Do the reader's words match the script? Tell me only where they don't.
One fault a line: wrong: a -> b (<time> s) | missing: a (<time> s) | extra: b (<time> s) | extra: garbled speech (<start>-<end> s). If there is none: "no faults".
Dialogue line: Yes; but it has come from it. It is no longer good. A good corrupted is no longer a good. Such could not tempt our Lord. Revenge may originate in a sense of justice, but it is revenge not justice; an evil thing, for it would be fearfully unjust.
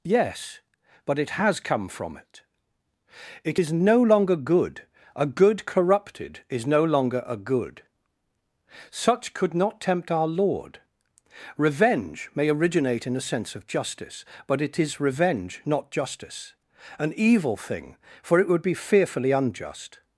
no faults